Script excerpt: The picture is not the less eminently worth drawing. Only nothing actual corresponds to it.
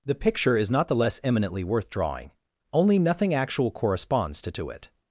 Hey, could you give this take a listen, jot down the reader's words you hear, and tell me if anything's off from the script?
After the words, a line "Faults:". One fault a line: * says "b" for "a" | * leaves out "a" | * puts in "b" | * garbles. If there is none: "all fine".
The picture is not the less eminently worth drawing. Only nothing actual corresponds to to it.
Faults:
* puts in "to"